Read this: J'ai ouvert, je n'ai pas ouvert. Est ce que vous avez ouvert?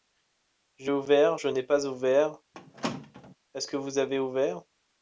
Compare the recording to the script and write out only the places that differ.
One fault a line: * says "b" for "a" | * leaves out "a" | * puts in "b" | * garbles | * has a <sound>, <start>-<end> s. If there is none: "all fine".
* has a squeak, 2.5-3.4 s